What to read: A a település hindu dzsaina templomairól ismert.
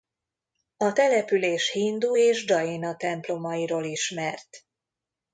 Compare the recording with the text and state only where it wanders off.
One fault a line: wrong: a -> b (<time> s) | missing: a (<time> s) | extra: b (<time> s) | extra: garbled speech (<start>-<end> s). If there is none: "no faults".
missing: a (0.9 s)
extra: és (2.2 s)